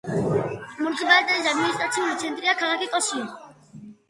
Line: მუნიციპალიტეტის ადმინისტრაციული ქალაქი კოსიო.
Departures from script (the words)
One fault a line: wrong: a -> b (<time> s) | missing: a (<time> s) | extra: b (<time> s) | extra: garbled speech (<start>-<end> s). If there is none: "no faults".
extra: ცენტრია (2.2 s)